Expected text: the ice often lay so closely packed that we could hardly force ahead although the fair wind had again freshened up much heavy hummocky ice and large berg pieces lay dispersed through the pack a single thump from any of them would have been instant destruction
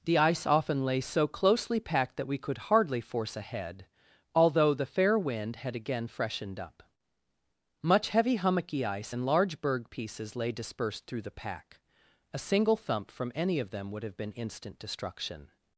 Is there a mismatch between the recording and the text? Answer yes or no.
no